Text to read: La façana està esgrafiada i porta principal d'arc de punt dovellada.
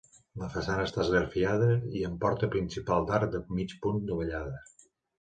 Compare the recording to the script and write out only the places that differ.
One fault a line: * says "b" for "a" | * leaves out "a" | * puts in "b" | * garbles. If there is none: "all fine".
* puts in "amb"
* puts in "mig"